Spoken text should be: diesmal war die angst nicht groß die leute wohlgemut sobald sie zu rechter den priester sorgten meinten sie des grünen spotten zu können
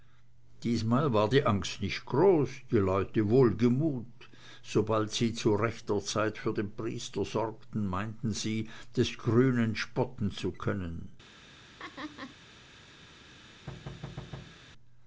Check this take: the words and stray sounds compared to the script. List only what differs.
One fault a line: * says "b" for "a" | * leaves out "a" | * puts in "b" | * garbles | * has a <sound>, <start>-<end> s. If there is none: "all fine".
* puts in "zeit für"
* has a laugh, 11.8-12.4 s
* has a thud, 13.7-14.6 s